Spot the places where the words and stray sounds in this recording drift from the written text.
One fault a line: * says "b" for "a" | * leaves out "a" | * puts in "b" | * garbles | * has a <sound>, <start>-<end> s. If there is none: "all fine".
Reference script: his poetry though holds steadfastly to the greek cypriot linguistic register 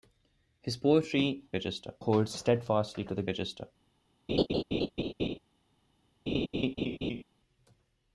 * says "register" for "though"
* leaves out "greek cypriot linguistic"
* has a laugh, 4.3-5.4 s
* has a laugh, 6.3-7.2 s